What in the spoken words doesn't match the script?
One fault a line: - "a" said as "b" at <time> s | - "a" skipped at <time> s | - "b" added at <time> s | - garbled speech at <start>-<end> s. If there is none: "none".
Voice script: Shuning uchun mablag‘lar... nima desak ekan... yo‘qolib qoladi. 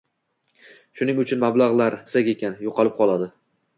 - "nima" skipped at 2.0 s